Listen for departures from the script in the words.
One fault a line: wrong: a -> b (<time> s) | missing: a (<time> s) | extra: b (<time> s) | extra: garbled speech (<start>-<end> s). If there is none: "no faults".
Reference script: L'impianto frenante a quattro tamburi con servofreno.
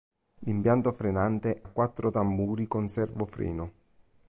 no faults